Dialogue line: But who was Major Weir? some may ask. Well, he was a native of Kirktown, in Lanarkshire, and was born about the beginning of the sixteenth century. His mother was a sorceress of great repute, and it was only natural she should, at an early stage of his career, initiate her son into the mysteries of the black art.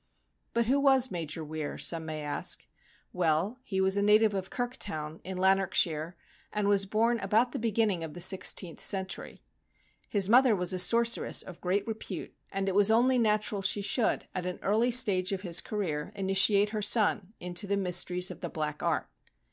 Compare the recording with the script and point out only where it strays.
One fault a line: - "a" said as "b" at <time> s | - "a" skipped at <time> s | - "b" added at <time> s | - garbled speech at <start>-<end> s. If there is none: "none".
none